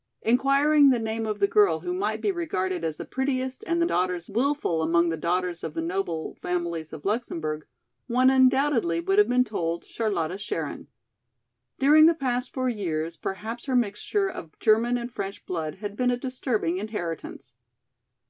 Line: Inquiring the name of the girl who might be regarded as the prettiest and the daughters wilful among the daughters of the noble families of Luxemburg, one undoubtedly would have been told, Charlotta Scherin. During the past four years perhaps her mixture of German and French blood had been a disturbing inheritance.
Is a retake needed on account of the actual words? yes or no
no